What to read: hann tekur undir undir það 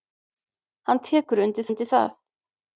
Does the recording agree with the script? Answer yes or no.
yes